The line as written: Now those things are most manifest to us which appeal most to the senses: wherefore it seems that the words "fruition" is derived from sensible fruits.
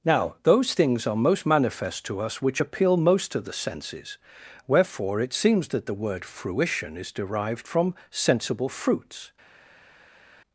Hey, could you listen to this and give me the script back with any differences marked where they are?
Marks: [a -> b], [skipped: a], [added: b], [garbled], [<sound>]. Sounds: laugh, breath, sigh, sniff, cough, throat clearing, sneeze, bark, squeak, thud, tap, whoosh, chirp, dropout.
Now those things are most manifest to us which appeal most to the senses: wherefore it seems that the [words -> word] "fruition" is derived from sensible fruits.